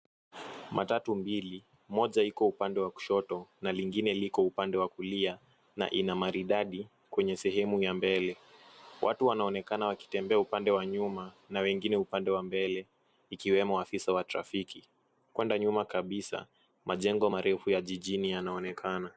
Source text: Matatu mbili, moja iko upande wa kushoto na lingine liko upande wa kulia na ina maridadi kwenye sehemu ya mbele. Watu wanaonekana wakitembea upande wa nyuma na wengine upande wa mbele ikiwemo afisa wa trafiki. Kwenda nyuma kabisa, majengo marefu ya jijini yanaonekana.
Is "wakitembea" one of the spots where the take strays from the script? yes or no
no